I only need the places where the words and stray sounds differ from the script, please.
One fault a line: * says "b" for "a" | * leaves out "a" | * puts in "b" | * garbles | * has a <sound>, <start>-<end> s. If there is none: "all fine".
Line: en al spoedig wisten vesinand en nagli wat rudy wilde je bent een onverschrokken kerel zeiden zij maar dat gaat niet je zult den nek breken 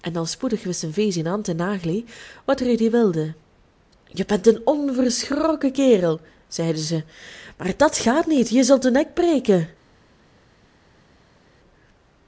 all fine